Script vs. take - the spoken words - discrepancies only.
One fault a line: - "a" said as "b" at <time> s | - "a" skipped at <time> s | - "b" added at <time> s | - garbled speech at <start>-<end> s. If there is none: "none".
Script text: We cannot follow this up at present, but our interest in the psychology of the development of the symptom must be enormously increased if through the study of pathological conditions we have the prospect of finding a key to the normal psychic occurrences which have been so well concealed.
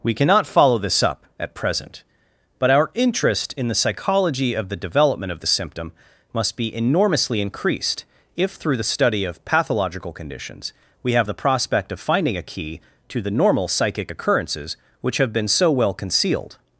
none